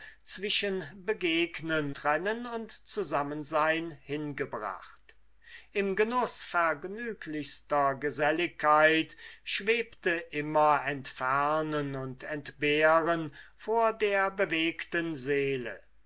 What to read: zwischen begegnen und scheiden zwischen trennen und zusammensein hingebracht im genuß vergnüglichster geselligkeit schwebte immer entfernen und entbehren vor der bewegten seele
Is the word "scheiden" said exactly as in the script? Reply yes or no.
no